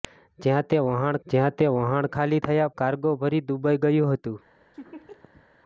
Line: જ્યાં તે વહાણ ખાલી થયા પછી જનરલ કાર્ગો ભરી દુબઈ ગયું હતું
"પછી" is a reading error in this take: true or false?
true